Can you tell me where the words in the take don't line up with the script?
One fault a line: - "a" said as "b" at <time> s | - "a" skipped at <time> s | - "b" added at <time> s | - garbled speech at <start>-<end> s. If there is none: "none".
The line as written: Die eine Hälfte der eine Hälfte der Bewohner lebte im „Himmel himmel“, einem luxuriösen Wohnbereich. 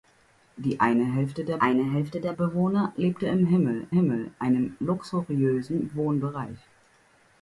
none